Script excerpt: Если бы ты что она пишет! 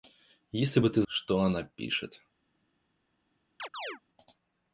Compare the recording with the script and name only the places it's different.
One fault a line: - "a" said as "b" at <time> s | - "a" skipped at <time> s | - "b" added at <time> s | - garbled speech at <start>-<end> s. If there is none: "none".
none